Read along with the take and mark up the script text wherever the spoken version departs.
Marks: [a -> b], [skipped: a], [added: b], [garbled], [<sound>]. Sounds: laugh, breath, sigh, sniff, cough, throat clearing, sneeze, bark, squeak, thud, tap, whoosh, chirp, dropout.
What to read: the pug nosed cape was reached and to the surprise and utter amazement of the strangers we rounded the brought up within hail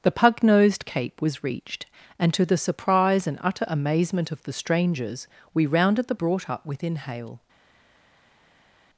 the pug nosed cape was reached and to the surprise and utter amazement of the strangers we rounded the brought up within hail